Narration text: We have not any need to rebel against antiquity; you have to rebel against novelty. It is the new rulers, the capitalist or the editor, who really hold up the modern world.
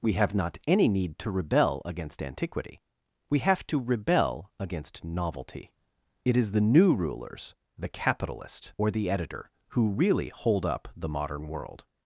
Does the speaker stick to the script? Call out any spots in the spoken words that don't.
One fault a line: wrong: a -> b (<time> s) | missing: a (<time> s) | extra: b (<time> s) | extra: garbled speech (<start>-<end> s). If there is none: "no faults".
wrong: you -> we (3.3 s)